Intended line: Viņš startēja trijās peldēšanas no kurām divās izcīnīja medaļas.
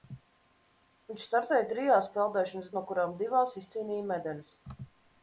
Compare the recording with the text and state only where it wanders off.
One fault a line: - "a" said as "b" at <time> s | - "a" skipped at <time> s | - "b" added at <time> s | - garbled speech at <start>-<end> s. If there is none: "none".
none